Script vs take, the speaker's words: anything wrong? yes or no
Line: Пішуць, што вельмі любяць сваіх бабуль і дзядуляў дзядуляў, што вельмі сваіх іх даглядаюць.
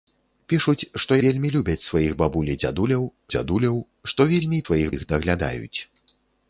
no